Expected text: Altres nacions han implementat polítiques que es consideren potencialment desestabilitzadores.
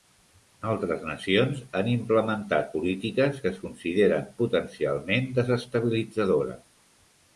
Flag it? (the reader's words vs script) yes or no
no